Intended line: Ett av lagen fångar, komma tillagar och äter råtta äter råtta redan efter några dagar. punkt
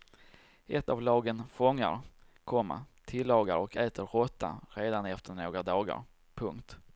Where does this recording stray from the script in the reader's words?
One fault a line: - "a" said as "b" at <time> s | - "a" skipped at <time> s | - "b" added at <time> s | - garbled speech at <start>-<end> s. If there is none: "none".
- "äter råtta" skipped at 4.6 s